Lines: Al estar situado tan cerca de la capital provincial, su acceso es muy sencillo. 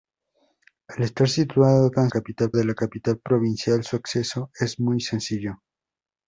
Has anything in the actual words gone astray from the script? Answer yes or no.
yes